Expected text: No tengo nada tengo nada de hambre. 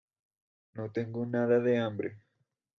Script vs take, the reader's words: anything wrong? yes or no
yes